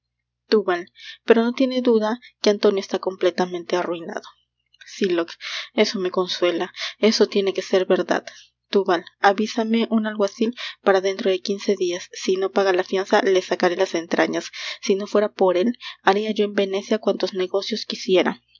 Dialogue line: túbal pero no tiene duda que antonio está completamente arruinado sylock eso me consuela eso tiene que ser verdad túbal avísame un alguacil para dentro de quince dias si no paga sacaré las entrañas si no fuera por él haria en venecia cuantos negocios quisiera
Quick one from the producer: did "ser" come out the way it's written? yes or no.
yes